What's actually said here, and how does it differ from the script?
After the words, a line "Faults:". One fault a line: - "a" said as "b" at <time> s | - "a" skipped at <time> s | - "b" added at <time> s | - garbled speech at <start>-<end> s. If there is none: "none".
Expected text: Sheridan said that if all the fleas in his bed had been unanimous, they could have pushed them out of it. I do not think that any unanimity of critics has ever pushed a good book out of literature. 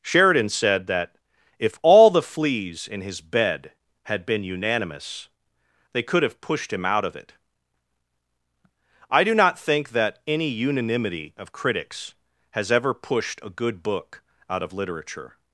Sheridan said that if all the fleas in his bed had been unanimous, they could have pushed him out of it. I do not think that any unanimity of critics has ever pushed a good book out of literature.
Faults:
- "them" said as "him" at 6.7 s